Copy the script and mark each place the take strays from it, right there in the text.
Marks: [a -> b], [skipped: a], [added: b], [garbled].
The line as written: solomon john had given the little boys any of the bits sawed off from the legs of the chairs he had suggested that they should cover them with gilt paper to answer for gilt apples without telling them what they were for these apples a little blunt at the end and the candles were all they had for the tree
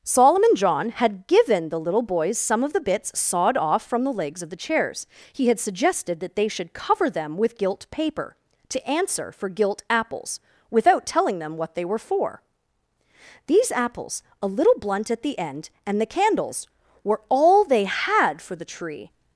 solomon john had given the little boys [any -> some] of the bits sawed off from the legs of the chairs he had suggested that they should cover them with gilt paper to answer for gilt apples without telling them what they were for these apples a little blunt at the end and the candles were all they had for the tree